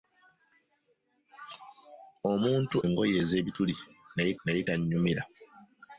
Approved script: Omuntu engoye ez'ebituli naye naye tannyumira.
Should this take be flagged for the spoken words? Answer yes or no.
no